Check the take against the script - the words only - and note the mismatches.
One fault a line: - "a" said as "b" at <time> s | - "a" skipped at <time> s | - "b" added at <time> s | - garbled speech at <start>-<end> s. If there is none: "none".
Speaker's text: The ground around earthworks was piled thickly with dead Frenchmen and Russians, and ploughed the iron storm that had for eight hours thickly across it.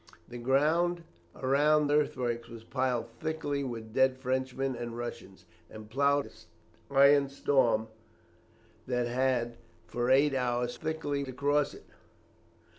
none